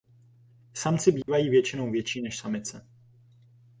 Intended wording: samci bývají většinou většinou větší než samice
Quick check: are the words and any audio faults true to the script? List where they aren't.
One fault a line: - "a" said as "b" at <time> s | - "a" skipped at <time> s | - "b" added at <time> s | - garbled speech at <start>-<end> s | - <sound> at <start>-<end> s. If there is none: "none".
- dropout at 1.2-1.3 s
- "většinou" skipped at 1.9 s